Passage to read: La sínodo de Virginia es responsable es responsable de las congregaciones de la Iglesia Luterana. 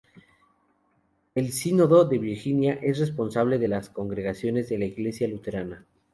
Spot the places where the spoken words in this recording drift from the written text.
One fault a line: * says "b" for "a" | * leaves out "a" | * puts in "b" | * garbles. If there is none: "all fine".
* says "El" for "La"
* leaves out "es responsable"